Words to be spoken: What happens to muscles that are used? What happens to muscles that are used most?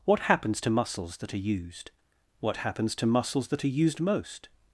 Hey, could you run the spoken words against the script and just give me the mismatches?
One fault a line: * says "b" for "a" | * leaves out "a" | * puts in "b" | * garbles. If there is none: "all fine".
all fine